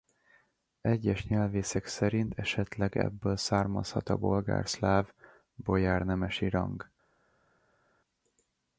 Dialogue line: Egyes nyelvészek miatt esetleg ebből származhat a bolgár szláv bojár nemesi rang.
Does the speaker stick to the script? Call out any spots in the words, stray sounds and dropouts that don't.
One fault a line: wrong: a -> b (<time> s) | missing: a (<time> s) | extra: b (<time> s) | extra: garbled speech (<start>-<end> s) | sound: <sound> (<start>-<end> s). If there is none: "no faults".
wrong: miatt -> szerint (1.9 s)